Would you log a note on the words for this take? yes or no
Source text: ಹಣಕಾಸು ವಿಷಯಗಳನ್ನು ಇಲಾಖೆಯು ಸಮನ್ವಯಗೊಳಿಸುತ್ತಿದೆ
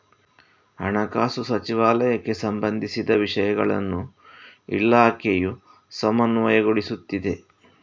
yes